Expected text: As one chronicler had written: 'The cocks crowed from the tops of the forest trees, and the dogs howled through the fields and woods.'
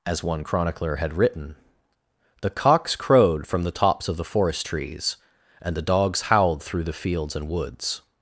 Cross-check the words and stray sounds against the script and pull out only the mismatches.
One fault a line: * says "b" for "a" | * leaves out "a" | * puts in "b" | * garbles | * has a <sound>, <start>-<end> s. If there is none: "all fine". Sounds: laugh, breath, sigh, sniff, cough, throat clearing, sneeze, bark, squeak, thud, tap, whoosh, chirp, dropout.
all fine